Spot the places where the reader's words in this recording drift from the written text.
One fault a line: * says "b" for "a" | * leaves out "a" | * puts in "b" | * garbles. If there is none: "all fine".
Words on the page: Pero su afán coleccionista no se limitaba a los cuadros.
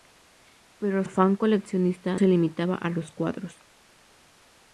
* leaves out "su"
* leaves out "no"